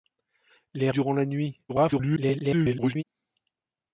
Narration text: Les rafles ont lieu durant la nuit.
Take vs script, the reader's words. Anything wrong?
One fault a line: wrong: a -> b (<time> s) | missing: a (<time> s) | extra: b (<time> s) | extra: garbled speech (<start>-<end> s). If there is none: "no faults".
missing: rafles ont lieu (0.9 s)
extra: garbled speech (1.7-3.0 s)